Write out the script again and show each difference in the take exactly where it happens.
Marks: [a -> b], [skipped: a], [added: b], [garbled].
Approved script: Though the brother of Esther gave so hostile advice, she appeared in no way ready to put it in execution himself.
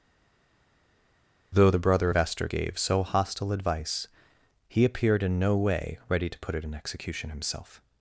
Though the brother of Esther gave so hostile advice, [she -> he] appeared in no way ready to put it in execution himself.